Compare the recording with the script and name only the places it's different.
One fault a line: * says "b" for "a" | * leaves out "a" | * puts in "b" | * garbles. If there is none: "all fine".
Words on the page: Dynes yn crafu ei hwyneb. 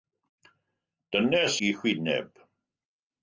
* leaves out "yn crafu"